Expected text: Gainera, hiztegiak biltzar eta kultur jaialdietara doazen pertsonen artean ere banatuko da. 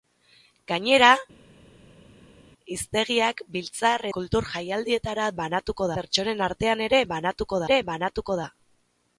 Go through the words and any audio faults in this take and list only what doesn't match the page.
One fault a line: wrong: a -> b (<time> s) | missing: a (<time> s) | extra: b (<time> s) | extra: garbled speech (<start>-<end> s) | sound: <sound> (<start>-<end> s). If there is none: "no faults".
missing: eta (4.1 s)
wrong: doazen -> banatuko (5.4 s)
extra: ere banatuko (7.7 s)